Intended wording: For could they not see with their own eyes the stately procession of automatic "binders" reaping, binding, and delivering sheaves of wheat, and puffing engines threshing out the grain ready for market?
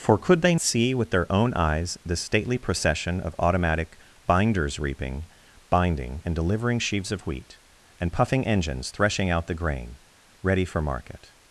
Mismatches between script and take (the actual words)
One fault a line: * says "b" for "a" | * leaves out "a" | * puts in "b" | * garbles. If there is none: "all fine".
* leaves out "not"